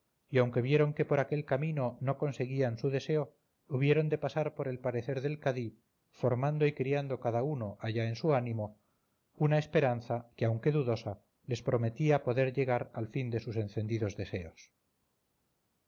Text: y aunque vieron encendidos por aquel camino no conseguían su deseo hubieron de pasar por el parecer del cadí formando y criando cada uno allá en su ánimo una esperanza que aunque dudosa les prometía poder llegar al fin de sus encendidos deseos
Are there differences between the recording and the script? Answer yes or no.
yes